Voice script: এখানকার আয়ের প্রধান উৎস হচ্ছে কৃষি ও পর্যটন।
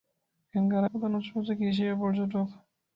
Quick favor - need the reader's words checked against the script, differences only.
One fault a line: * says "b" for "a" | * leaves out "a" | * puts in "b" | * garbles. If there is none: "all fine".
* leaves out "আয়ের"